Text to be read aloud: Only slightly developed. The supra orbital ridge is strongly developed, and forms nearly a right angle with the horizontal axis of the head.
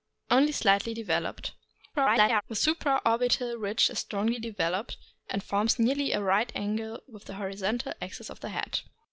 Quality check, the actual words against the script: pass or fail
fail